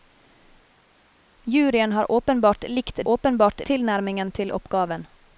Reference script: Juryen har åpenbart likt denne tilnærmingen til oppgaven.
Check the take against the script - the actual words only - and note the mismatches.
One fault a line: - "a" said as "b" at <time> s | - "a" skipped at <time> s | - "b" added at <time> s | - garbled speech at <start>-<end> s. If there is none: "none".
- "denne" said as "åpenbart" at 3.1 s